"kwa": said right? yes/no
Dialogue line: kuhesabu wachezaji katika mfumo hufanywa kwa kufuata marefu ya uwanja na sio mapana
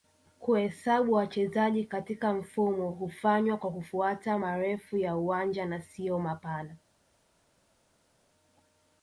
yes